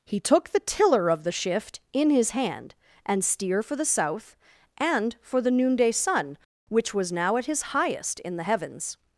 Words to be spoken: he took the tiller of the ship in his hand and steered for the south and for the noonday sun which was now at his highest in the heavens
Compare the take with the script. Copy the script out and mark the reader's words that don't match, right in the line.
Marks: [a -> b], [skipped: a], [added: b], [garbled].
he took the tiller of the [ship -> shift] in his hand and [steered -> steer] for the south and for the noonday sun which was now at his highest in the heavens